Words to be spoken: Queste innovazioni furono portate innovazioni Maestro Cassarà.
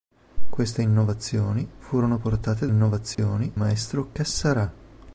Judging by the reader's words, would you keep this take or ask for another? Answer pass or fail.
pass